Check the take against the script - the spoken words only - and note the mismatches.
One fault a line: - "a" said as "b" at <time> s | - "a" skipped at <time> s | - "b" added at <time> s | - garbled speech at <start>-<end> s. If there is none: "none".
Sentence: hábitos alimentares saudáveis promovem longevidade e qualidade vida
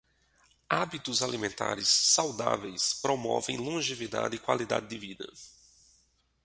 - "de" added at 4.9 s